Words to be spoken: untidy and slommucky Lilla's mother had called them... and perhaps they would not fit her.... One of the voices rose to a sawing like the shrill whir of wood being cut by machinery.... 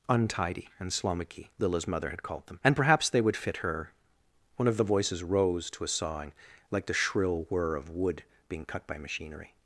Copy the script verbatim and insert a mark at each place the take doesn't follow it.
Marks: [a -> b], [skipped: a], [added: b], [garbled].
untidy and slommucky Lilla's mother had called them... and perhaps they would [skipped: not] fit her.... One of the voices rose to a sawing like the shrill whir of wood being cut by machinery....